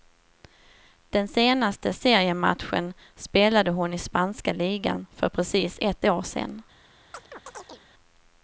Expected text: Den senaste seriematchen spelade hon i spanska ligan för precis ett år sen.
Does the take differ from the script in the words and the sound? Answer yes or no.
yes